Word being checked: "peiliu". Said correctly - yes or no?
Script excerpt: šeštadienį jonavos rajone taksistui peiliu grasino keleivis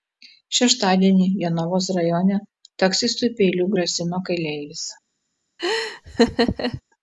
yes